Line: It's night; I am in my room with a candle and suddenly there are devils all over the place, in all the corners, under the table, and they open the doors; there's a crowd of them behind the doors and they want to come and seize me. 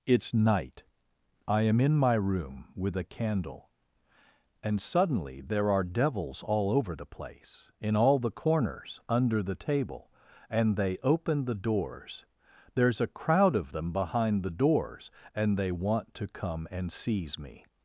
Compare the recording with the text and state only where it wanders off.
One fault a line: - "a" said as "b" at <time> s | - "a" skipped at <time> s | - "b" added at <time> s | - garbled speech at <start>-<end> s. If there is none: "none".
none